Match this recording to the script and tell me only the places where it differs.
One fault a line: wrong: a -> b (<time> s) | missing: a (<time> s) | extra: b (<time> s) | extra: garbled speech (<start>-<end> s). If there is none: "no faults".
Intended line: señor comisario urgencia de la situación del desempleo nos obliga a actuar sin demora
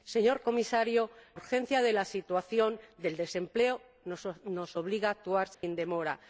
no faults